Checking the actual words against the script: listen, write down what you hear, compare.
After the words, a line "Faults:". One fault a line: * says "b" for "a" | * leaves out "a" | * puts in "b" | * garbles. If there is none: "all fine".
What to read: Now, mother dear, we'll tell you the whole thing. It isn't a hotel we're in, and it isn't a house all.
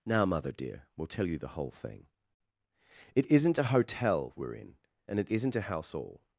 Now, mother dear, we'll tell you the whole thing. It isn't a hotel we're in, and it isn't a house all.
Faults:
all fine